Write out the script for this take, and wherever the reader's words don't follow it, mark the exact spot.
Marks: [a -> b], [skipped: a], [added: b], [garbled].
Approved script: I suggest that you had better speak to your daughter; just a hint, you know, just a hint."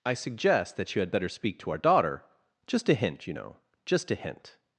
I suggest that you had better speak to [your -> our] daughter; just a hint, you know, just a hint."